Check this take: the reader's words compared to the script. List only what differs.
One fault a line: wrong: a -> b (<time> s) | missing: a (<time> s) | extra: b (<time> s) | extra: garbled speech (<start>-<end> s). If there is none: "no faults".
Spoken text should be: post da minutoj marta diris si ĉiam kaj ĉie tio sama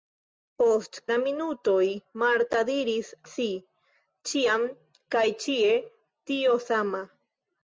no faults